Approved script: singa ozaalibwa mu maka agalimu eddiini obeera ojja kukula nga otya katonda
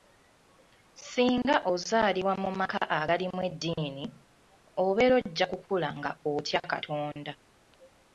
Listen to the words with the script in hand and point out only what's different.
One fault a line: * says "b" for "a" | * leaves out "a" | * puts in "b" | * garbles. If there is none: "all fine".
all fine